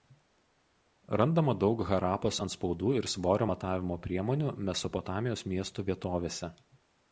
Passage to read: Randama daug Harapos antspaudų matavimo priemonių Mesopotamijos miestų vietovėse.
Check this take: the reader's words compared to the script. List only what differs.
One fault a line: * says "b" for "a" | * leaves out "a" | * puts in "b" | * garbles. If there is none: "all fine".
* puts in "ir svorio"